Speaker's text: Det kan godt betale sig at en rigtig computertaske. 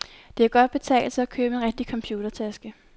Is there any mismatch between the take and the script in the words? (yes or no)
yes